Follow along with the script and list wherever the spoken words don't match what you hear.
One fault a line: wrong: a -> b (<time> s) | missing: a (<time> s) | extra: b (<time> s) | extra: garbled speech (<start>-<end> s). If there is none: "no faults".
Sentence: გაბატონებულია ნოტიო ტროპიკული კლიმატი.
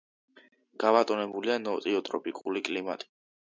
no faults